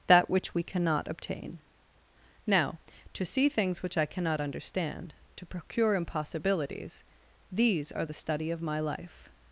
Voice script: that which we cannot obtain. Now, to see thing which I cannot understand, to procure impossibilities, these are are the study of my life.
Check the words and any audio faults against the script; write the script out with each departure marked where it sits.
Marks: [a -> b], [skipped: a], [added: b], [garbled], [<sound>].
that which we cannot obtain. Now, to see [thing -> things] which I cannot understand, to procure impossibilities, these are [skipped: are] the study of my life.